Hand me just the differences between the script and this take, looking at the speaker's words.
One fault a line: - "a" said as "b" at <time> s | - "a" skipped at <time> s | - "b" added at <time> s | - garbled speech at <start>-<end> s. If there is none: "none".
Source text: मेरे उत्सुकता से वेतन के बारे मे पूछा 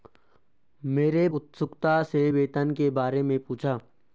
none